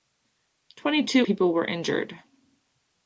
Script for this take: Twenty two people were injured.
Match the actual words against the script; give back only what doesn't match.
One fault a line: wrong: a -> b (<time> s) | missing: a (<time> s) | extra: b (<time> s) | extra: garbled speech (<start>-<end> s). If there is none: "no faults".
no faults